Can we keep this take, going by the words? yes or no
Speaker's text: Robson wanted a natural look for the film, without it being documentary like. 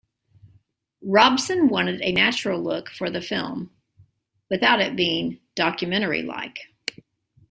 yes